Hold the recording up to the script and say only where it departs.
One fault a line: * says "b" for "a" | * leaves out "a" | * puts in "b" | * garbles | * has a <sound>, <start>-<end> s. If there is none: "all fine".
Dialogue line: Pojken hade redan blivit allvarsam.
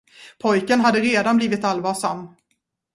all fine